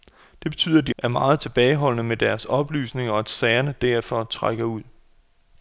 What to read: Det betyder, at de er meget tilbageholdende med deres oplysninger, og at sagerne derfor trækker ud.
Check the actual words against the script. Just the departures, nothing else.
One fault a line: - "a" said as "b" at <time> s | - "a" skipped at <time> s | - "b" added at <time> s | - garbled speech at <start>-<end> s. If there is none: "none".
none